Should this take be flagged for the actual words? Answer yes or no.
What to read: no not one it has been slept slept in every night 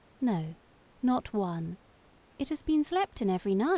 yes